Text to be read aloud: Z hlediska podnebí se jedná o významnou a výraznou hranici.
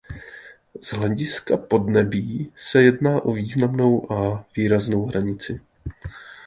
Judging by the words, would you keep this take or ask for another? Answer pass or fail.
pass